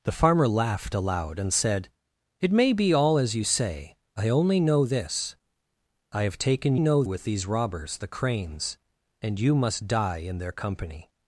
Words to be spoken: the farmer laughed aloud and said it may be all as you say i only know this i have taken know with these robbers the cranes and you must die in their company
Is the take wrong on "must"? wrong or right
right